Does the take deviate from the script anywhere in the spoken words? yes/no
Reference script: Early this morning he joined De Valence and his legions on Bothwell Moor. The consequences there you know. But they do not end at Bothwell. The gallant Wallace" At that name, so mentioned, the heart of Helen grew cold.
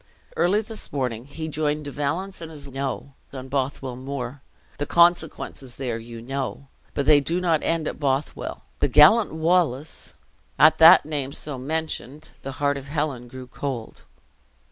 yes